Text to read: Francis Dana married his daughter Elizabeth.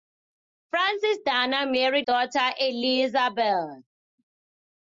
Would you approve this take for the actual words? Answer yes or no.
no